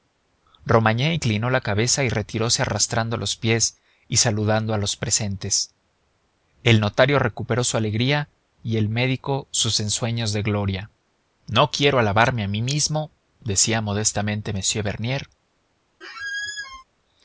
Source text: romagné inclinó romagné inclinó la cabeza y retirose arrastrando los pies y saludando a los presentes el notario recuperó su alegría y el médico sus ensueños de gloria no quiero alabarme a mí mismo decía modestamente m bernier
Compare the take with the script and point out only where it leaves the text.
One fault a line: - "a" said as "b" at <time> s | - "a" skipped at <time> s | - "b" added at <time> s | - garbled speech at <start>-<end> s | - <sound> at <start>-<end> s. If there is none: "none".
- "romagné inclinó" skipped at 1.5 s
- squeak at 16.0-16.8 s